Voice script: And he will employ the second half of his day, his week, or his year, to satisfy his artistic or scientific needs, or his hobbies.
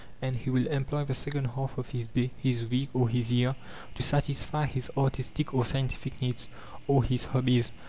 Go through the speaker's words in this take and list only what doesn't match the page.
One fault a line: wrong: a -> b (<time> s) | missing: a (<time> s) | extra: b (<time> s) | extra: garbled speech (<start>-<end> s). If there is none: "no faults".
no faults